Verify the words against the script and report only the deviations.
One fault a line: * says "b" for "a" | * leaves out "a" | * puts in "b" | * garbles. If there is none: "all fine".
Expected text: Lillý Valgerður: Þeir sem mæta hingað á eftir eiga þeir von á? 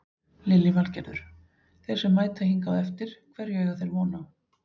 * puts in "hverju"